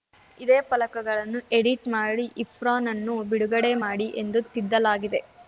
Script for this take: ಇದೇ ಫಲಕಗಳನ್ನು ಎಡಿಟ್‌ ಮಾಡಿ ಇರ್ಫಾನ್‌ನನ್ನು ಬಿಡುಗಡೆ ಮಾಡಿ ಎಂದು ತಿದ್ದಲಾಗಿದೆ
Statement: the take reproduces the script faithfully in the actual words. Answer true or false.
true